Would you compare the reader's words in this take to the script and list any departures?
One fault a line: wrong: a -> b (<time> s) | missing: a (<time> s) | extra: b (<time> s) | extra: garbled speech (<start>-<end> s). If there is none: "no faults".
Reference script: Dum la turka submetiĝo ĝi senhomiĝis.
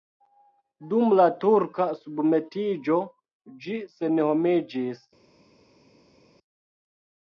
no faults